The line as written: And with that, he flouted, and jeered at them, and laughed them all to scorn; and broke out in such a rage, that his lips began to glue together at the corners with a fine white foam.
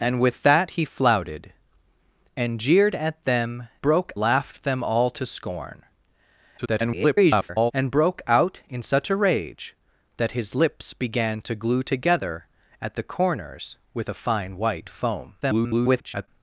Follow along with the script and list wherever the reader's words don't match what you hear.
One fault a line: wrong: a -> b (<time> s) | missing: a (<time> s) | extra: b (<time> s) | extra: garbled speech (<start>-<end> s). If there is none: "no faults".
wrong: and -> broke (3.8 s)
extra: garbled speech (6.6-7.7 s)
extra: garbled speech (15.4-16.3 s)